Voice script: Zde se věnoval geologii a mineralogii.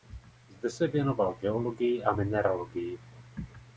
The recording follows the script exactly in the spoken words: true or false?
true